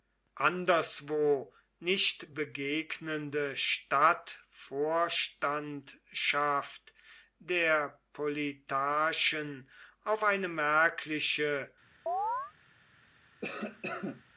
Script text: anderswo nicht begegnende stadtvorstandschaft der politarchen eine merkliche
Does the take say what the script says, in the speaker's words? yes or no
no